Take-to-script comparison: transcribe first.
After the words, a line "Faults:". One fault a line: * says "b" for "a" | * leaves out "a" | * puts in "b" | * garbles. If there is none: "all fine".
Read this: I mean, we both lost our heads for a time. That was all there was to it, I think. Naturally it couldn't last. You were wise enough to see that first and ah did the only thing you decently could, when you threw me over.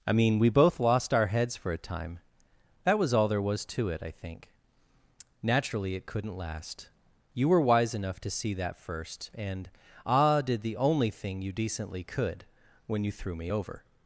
I mean, we both lost our heads for a time. That was all there was to it, I think. Naturally it couldn't last. You were wise enough to see that first and ah did the only thing you decently could, when you threw me over.
Faults:
all fine